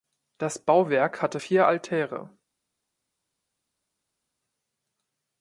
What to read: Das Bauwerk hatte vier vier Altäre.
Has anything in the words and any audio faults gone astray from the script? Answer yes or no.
yes